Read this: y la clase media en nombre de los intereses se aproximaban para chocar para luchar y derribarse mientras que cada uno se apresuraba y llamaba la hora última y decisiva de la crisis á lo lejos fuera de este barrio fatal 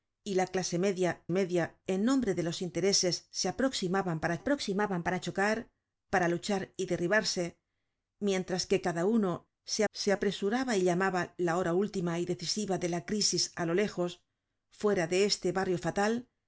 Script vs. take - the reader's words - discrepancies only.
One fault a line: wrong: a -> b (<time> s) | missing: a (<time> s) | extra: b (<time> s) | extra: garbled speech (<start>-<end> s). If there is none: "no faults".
extra: media (1.3 s)
extra: aproximaban para (4.4 s)
extra: se (9.9 s)